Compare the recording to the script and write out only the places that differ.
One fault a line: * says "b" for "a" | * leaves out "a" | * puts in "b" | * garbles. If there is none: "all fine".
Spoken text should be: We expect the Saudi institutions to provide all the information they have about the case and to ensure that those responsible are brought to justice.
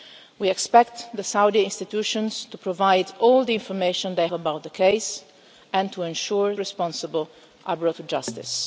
* leaves out "have"
* leaves out "that those"